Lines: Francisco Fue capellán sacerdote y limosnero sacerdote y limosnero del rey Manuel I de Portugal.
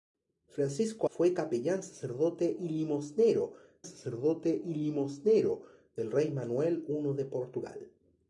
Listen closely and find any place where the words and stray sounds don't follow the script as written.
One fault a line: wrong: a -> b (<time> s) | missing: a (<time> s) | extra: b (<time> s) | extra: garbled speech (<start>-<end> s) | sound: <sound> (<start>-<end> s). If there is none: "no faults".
no faults